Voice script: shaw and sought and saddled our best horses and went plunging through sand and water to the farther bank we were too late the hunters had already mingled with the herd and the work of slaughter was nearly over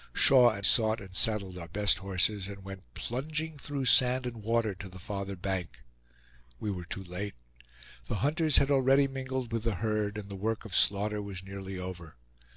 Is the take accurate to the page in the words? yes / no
yes